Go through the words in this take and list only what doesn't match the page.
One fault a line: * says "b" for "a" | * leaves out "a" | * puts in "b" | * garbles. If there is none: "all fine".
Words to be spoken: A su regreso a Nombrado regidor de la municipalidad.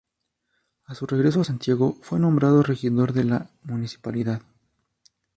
* puts in "Santiago fue"